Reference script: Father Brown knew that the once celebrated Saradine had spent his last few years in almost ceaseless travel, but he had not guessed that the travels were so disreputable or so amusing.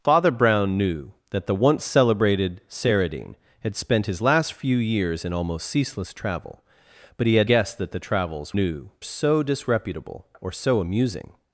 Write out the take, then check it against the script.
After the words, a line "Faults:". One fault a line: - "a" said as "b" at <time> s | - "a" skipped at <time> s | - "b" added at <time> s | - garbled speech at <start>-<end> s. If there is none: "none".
Father Brown knew that the once celebrated Saradine had spent his last few years in almost ceaseless travel, but he had guessed that the travels knew so disreputable or so amusing.
Faults:
- "not" skipped at 7.5 s
- "were" said as "knew" at 8.6 s